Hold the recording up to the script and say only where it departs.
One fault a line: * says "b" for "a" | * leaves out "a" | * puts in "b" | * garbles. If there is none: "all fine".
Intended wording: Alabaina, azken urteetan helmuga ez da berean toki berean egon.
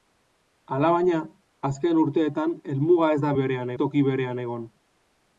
all fine